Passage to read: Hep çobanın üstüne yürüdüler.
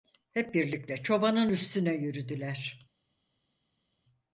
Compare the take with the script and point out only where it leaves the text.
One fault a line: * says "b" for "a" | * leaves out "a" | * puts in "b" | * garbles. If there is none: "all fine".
* puts in "birlikte"